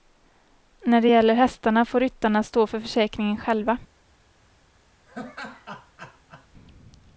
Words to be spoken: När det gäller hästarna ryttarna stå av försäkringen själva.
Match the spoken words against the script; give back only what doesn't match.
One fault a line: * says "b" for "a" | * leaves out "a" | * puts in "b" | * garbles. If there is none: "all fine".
* puts in "får"
* says "för" for "av"